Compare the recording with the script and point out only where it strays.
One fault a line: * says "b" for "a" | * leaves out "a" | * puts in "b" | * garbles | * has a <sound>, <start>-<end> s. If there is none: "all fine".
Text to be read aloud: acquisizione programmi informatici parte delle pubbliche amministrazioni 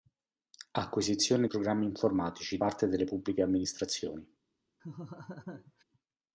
* has a laugh, 4.8-5.8 s